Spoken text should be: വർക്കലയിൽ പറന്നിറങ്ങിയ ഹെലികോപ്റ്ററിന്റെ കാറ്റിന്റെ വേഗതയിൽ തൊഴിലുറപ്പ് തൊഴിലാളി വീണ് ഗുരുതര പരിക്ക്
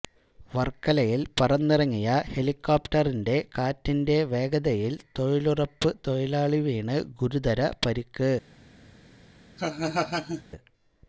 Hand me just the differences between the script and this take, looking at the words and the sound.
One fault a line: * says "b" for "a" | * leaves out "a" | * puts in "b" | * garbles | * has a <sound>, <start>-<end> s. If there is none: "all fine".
* has a laugh, 9.6-10.4 s